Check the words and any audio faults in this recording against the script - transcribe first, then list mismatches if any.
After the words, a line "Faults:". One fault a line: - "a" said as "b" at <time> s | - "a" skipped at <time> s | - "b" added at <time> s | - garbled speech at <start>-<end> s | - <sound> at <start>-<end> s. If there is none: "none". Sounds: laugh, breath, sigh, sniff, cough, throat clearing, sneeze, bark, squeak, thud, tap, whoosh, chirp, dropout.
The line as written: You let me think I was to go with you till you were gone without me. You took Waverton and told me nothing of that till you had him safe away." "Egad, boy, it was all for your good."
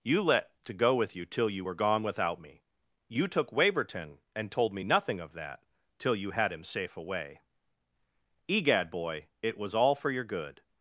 You let to go with you till you were gone without me. You took Waverton and told me nothing of that till you had him safe away." "Egad, boy, it was all for your good."
Faults:
- "me think I was" skipped at 0.6 s